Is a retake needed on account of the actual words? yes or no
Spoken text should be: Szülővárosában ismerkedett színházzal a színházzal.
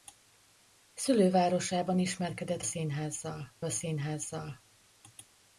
no